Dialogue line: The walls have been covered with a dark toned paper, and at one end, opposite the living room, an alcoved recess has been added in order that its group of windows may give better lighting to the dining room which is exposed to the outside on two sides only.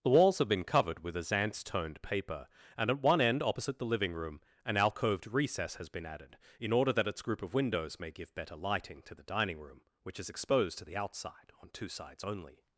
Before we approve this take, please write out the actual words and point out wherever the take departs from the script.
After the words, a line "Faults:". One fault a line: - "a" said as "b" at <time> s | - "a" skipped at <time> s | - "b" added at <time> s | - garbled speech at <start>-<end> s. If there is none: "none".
The walls have been covered with a zance toned paper, and at one end, opposite the living room, an alcoved recess has been added in order that its group of windows may give better lighting to the dining room which is exposed to the outside on two sides only.
Faults:
- "dark" said as "zance" at 1.2 s